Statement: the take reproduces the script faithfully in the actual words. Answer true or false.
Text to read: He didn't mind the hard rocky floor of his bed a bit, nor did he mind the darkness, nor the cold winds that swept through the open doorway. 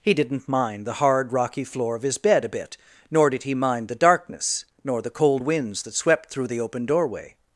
true